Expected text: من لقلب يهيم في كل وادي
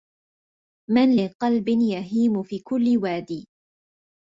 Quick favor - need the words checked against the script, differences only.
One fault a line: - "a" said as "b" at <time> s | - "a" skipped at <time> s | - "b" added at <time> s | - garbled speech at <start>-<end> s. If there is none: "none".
none